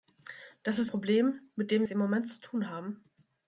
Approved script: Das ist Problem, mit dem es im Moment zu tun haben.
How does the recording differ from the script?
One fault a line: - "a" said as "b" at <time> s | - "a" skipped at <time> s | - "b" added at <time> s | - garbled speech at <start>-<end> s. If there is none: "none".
none